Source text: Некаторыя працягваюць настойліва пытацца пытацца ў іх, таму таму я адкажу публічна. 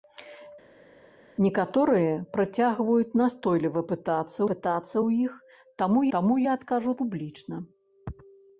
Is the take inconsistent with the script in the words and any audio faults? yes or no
no